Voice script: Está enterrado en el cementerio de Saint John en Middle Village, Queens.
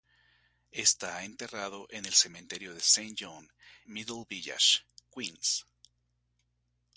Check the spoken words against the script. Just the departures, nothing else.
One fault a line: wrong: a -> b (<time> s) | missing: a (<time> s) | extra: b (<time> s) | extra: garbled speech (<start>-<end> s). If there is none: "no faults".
missing: en (3.5 s)